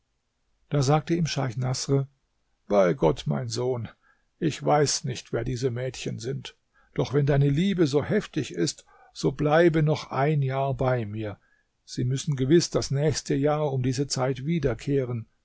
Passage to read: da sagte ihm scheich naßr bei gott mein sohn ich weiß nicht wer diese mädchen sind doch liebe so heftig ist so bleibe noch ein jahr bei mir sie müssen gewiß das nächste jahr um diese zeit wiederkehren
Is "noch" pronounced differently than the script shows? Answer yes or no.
no